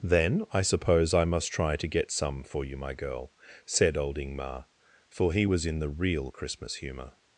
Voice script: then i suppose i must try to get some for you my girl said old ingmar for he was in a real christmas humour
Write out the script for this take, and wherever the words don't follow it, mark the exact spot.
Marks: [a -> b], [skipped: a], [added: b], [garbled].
then i suppose i must try to get some for you my girl said old ingmar for he was in [a -> the] real christmas humour